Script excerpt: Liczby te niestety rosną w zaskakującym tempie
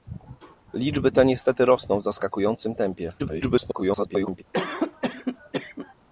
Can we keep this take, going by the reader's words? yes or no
no